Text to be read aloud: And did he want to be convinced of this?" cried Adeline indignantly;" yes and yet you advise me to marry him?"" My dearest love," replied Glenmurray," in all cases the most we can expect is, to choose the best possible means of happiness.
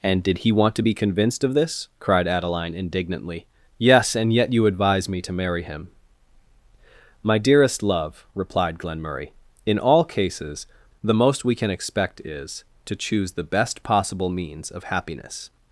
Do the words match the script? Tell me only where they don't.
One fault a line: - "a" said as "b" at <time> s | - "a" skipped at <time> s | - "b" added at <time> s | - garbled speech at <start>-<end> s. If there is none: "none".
none